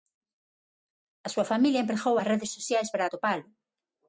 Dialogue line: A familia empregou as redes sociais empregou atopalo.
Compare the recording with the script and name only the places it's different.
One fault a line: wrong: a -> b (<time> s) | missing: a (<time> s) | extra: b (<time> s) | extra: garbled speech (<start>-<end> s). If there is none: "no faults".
extra: súa (1.3 s)
wrong: empregou -> para (2.9 s)